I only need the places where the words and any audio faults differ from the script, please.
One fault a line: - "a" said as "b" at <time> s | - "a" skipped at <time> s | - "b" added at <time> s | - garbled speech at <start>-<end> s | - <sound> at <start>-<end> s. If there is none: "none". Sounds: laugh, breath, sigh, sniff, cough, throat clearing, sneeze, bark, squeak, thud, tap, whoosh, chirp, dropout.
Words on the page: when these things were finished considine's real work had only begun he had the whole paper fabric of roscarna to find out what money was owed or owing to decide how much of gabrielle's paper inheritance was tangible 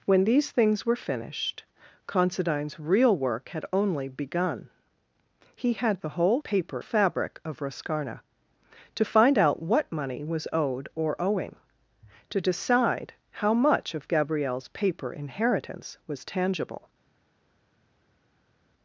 none